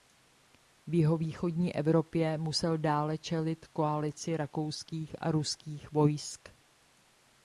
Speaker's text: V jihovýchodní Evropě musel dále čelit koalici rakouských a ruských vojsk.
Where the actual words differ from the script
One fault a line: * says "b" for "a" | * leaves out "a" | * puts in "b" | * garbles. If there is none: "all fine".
all fine